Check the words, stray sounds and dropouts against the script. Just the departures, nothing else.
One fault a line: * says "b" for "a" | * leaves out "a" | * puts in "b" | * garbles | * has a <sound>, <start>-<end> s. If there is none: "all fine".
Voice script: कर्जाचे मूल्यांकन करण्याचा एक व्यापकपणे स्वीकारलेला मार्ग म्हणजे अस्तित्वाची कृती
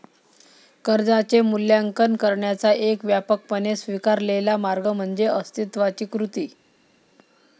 all fine